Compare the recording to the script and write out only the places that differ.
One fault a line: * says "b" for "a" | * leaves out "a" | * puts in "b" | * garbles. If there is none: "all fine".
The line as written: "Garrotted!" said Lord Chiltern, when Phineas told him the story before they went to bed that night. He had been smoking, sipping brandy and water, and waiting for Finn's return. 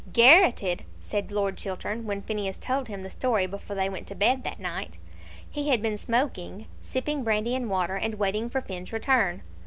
all fine